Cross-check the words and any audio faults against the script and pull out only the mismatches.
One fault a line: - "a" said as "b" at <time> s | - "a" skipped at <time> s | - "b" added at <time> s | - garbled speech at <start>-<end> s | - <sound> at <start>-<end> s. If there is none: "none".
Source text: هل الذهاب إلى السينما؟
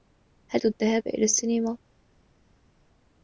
none